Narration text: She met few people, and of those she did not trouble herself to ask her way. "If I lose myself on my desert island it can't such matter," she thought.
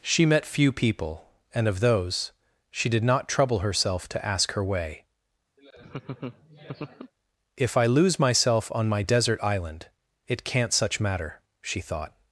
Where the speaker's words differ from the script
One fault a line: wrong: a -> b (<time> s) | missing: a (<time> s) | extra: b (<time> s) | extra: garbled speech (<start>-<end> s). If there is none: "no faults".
no faults